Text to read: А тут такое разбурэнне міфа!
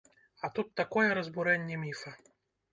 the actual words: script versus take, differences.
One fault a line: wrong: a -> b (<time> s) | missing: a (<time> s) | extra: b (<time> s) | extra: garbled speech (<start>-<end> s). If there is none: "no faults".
no faults